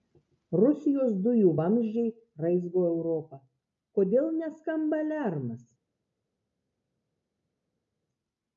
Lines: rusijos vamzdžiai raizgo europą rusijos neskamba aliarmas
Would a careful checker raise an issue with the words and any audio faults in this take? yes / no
yes